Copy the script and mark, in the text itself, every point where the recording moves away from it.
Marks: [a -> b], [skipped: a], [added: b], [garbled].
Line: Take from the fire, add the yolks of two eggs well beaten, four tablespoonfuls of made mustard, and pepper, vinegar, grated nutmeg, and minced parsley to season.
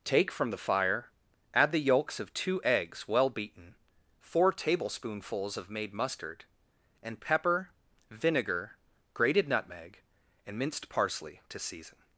Take from the fire, add the yolks of two eggs well beaten, four tablespoonfuls of made mustard, and pepper, vinegar, grated nutmeg, and minced parsley to season.